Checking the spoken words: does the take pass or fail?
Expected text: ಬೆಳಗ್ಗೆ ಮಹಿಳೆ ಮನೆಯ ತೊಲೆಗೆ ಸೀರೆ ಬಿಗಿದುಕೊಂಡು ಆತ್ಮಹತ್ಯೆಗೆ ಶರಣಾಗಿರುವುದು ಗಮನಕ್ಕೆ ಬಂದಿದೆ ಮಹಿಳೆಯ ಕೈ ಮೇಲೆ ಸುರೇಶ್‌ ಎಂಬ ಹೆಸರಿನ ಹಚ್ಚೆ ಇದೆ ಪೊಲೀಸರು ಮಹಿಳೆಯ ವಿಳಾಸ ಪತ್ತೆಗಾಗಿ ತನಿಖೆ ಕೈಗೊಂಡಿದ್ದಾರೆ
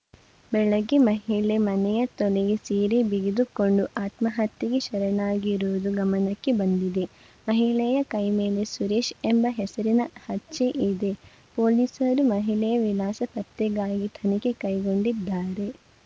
pass